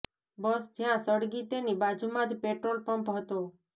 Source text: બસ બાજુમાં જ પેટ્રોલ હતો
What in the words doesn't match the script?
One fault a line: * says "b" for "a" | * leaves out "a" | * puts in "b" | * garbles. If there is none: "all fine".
* puts in "જ્યાં સળગી તેની"
* puts in "પંપ"